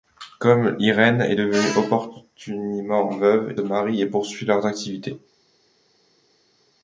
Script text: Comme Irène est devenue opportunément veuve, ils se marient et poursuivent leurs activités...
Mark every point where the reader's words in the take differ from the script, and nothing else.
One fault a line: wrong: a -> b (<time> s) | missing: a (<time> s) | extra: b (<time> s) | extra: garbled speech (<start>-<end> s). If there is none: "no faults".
missing: ils se (3.6 s)